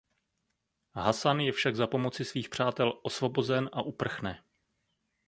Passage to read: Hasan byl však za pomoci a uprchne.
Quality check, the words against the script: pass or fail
fail